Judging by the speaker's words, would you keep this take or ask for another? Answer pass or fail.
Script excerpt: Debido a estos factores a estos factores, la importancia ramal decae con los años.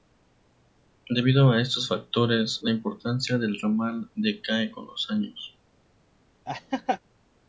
fail